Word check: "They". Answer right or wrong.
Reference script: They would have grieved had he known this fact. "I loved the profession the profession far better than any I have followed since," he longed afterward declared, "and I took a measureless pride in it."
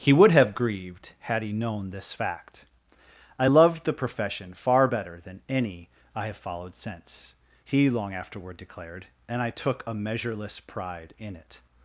wrong